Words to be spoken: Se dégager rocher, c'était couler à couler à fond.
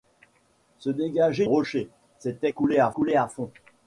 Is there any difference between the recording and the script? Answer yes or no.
no